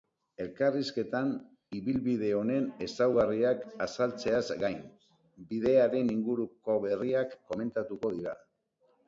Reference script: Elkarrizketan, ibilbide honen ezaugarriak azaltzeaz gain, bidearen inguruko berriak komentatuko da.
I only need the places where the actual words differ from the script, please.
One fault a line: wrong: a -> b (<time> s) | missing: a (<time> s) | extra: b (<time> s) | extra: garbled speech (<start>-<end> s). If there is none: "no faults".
wrong: da -> dira (8.2 s)